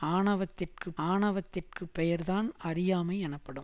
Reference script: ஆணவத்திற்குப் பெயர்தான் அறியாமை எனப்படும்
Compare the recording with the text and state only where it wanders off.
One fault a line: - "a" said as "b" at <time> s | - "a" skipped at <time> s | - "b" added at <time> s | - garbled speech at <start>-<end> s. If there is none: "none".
- "ஆணவத்திற்குப்" added at 1.0 s